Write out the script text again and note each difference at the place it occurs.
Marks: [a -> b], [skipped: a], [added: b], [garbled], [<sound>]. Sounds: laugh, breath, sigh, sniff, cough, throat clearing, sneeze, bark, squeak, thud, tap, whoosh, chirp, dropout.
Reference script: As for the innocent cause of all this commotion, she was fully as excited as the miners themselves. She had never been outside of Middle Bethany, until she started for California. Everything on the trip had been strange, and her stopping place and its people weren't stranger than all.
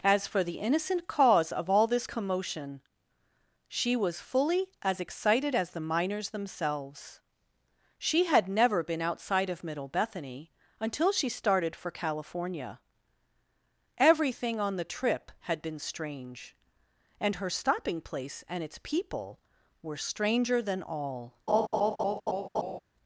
As for the innocent cause of all this commotion, she was fully as excited as the miners themselves. She had never been outside of Middle Bethany, until she started for California. Everything on the trip had been strange, and her stopping place and its people [weren't -> were] stranger than all. [laugh]